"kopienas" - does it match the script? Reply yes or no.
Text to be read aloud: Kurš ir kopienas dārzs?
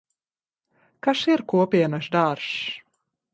yes